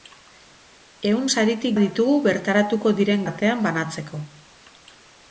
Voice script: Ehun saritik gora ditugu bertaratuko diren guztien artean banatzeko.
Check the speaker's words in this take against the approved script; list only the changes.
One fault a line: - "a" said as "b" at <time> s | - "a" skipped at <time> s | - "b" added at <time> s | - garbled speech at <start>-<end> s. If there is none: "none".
- "gora" skipped at 1.7 s
- "guztien" skipped at 3.3 s